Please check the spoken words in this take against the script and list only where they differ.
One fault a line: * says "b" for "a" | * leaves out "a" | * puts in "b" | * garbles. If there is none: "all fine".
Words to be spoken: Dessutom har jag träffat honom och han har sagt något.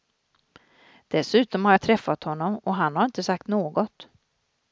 * puts in "inte"